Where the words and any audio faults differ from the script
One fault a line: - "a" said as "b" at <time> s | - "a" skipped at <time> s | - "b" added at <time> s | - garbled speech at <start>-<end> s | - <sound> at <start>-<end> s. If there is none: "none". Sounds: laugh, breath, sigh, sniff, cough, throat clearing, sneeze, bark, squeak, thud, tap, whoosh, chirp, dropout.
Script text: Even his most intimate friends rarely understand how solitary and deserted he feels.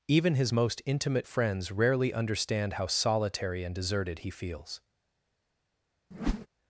- whoosh at 6.1-6.5 s